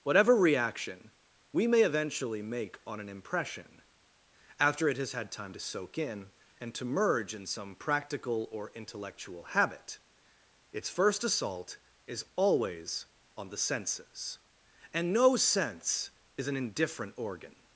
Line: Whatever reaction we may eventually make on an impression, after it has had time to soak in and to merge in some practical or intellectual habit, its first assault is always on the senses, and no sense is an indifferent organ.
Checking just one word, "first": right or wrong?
right